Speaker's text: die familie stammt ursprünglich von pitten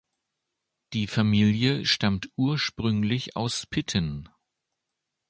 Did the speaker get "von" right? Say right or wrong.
wrong